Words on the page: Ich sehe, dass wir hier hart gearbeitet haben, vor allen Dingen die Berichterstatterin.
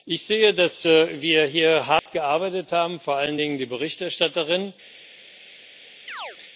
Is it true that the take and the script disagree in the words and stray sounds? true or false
true